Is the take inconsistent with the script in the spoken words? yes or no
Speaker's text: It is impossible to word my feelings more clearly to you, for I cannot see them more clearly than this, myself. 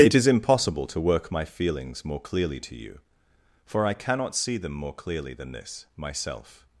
yes